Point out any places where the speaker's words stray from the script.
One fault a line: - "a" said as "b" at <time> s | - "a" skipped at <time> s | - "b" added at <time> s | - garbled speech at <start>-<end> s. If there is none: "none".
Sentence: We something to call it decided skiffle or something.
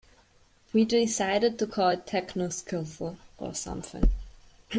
- "something" said as "decided" at 0.8 s
- "decided" said as "techno" at 2.1 s